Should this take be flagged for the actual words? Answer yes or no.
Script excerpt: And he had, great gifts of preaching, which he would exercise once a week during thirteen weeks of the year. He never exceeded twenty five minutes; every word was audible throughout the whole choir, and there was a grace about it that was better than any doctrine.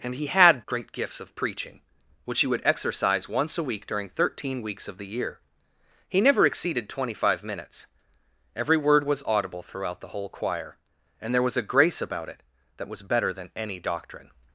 no